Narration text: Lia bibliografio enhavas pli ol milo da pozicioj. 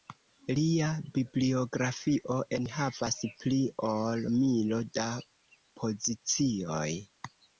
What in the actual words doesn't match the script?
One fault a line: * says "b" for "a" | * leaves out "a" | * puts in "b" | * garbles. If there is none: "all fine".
all fine